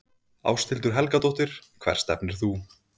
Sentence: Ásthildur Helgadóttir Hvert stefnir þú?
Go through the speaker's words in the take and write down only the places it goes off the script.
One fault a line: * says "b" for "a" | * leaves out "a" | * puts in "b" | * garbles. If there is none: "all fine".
all fine